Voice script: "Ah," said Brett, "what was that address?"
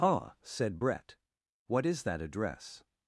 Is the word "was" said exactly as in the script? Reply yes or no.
no